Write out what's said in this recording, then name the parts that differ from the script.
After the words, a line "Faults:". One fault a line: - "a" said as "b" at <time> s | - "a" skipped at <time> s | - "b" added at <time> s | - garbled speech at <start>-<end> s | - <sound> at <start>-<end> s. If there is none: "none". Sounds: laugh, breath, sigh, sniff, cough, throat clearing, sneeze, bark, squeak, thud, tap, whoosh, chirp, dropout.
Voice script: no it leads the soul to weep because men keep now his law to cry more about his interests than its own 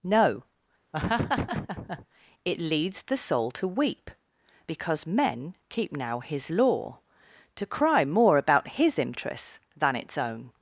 no it leads the soul to weep because men keep now his law to cry more about his interests than its own
Faults:
- laugh at 0.9-2.1 s